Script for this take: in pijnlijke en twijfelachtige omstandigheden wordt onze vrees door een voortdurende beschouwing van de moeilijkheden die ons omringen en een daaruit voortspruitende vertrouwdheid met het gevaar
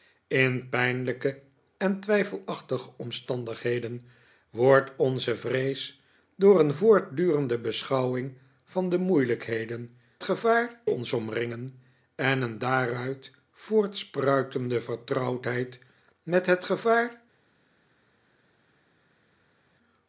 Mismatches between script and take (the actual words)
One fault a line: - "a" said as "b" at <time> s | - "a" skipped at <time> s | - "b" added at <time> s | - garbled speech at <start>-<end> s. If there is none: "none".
- "die" said as "gevaar" at 10.2 s